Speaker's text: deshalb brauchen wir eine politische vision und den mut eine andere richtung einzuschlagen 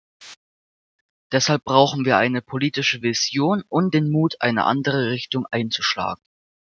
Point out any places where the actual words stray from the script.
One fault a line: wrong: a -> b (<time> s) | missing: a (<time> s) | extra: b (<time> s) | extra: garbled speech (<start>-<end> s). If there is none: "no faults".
no faults